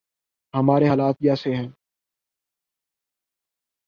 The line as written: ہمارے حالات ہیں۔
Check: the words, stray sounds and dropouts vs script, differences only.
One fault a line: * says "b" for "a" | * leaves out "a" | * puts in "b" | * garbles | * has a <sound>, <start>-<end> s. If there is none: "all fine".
* puts in "جیسے"